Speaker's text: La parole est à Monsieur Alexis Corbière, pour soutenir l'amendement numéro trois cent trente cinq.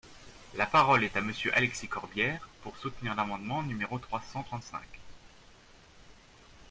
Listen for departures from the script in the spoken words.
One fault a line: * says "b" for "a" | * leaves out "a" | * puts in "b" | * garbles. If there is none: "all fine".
all fine